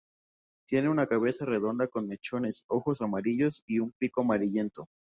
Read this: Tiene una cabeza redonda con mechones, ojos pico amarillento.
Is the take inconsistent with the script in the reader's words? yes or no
yes